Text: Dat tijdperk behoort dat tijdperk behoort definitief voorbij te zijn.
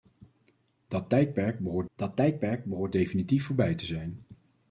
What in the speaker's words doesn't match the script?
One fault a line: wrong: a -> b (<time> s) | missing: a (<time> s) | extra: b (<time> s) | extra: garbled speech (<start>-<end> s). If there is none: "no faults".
no faults